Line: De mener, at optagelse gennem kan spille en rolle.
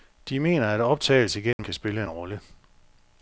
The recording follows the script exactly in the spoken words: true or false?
true